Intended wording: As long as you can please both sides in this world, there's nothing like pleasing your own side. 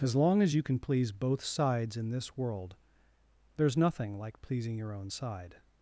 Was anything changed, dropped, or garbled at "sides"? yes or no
no